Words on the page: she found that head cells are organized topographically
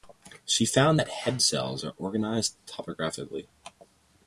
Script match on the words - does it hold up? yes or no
yes